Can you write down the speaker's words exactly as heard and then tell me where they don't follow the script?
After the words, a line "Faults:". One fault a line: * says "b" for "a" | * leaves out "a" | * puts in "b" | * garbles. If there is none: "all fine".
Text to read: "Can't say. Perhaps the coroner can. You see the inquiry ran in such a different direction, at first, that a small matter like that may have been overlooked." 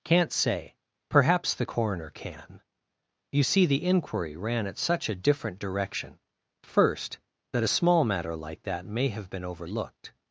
"Can't say. Perhaps the coroner can. You see the inquiry ran at such a different direction, first, that a small matter like that may have been overlooked."
Faults:
* says "at" for "in"
* leaves out "at"